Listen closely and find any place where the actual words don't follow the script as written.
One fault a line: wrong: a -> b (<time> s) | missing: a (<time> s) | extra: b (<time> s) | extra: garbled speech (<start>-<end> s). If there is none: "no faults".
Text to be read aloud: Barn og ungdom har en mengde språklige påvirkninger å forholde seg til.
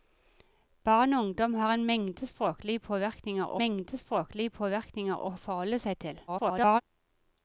extra: mengde språklige påvirkninger (3.6 s)
extra: garbled speech (6.3-6.8 s)